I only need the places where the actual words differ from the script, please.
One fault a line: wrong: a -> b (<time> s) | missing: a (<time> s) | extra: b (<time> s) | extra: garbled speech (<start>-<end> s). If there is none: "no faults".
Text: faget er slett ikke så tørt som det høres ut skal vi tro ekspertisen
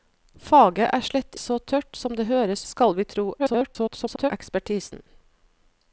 missing: ikke (1.4 s)
missing: ut (2.7 s)
extra: garbled speech (3.4-4.3 s)